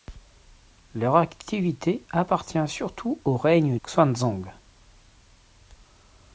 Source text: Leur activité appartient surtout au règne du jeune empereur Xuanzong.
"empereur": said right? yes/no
no